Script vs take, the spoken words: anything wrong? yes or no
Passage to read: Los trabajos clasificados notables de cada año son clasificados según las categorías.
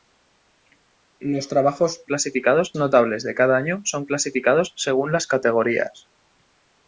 no